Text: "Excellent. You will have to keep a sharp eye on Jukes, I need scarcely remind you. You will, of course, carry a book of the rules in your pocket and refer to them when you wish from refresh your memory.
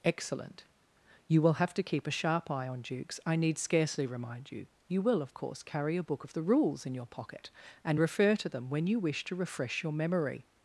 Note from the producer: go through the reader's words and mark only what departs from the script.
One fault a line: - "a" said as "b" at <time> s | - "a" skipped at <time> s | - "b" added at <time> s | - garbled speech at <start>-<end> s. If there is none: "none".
- "from" said as "to" at 9.2 s